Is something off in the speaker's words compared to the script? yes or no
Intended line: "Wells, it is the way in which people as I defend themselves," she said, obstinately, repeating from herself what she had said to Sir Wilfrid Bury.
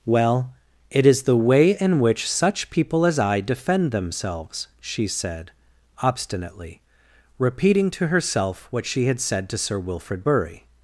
yes